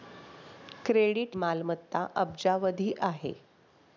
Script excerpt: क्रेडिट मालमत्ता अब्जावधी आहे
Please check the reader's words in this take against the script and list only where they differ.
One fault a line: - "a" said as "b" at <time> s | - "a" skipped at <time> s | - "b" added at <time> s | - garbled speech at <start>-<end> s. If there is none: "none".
none